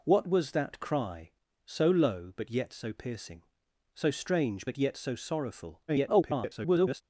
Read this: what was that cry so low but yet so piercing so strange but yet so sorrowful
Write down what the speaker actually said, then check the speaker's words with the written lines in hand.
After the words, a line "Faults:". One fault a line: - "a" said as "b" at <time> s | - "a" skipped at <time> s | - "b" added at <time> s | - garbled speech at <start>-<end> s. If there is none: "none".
what was that cry so low but yet so piercing so strange but yet so sorrowful [garbled]
Faults:
- garbled speech at 5.9-7.0 s